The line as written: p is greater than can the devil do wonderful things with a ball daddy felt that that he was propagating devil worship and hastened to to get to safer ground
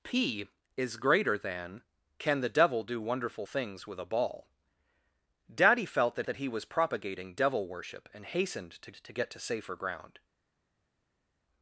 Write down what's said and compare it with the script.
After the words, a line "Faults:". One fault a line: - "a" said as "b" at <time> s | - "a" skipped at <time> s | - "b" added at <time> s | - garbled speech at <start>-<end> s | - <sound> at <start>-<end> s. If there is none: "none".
p is greater than can the devil do wonderful things with a ball daddy felt that that he was propagating devil worship and hastened to to get to safer ground
Faults:
none